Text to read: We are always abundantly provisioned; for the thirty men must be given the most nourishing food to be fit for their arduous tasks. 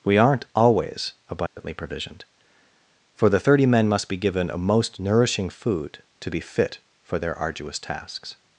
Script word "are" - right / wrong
wrong